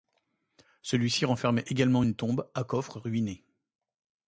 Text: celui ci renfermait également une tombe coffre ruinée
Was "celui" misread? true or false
false